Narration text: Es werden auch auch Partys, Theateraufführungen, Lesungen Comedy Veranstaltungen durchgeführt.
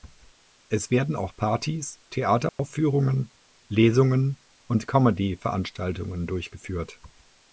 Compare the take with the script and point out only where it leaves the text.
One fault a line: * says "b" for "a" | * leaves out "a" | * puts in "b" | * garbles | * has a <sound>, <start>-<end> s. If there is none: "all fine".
* leaves out "auch"
* has a dropout, 2.5-2.6 s
* puts in "und"